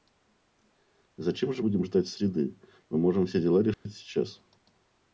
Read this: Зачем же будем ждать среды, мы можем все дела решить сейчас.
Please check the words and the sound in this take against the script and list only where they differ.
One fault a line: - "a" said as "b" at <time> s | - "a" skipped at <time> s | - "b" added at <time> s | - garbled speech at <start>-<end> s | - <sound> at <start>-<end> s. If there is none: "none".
- dropout at 3.7-3.9 s